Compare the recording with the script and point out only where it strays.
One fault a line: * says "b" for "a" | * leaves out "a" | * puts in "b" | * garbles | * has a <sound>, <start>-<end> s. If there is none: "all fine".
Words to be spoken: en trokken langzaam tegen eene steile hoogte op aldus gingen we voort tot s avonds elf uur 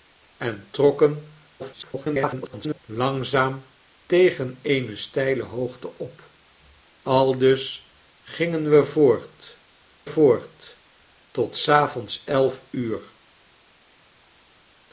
* garbles
* puts in "voort"